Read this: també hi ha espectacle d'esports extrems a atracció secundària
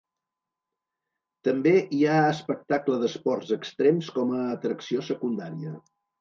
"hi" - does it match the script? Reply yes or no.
yes